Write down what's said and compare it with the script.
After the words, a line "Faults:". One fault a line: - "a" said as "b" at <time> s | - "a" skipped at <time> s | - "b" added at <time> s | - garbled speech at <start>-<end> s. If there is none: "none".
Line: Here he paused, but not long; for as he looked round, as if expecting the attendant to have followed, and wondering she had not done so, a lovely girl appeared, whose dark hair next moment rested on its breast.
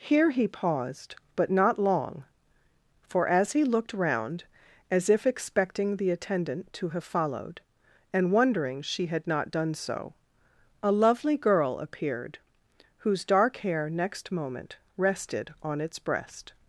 Here he paused, but not long; for as he looked round, as if expecting the attendant to have followed, and wondering she had not done so, a lovely girl appeared, whose dark hair next moment rested on its breast.
Faults:
none